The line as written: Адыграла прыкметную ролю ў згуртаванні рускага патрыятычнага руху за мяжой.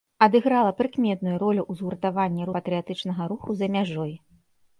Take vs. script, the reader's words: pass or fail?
fail